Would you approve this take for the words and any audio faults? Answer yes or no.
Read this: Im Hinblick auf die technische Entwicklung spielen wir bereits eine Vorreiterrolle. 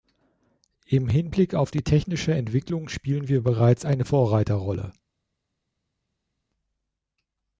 yes